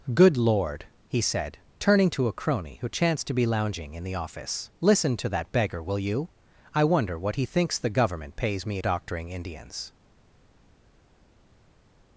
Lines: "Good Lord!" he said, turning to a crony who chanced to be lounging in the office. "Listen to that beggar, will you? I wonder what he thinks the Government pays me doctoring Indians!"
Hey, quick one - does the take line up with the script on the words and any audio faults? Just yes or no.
yes